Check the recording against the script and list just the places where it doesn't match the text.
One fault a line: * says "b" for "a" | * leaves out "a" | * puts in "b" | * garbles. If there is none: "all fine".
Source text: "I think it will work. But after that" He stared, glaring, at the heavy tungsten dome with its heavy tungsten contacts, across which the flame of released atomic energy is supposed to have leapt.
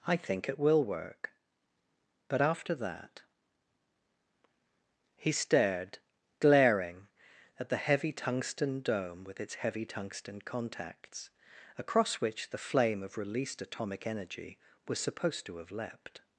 * says "was" for "is"